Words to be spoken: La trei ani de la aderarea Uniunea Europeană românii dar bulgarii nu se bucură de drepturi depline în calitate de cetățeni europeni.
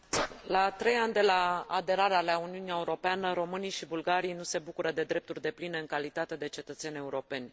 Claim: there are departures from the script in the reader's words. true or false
true